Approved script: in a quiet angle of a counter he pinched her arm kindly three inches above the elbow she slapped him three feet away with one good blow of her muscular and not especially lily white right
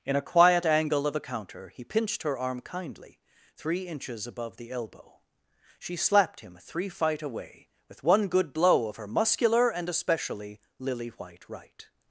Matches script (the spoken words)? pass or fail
fail